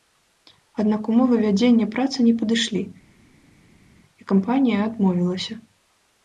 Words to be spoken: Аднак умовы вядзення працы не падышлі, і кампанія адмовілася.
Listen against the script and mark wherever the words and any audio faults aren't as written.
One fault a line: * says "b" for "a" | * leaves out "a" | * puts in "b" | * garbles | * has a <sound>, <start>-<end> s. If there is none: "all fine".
all fine